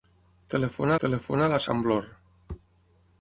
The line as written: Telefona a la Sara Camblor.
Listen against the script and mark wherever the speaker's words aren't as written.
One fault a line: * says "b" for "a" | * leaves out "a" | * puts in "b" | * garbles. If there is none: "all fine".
* puts in "telefona"
* leaves out "Sara"